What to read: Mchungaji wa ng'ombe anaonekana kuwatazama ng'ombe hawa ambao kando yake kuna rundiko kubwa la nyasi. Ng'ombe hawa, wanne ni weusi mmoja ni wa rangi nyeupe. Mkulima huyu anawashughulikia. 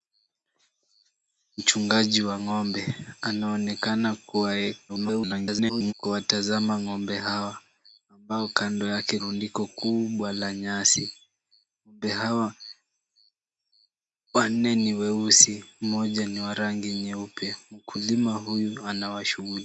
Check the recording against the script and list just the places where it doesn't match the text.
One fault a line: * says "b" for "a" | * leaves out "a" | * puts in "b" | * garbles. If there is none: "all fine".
* garbles
* leaves out "kuna"